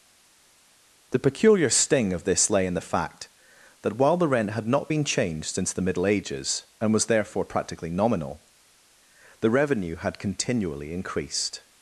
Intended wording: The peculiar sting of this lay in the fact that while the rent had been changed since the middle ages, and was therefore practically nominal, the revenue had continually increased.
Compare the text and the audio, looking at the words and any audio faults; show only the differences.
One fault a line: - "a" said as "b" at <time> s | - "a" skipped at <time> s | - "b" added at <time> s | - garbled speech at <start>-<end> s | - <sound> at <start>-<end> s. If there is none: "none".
- "not" added at 4.7 s